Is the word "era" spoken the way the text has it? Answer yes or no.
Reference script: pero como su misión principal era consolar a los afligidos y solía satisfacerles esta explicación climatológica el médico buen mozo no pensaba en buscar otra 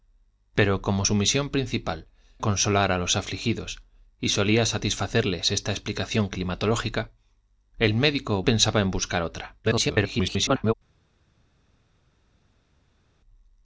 no